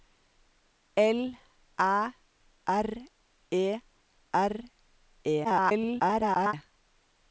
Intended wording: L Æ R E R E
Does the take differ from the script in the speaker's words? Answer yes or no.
yes